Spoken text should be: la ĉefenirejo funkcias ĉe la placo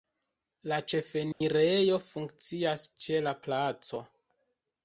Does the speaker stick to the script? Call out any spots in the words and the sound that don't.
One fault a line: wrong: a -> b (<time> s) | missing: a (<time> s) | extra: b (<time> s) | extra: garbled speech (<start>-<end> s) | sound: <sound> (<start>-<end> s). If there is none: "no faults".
sound: dropout (1.3-1.4 s)